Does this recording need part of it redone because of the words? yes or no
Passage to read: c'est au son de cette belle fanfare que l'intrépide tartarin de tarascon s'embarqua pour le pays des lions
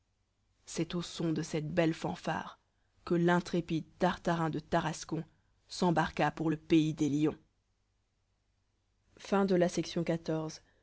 no